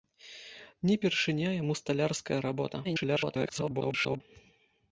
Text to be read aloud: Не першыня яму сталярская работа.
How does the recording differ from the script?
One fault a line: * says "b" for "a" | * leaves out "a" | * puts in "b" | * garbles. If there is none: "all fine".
* garbles